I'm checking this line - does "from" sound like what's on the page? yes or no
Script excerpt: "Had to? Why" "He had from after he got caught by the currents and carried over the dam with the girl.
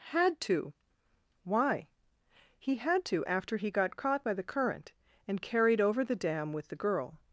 no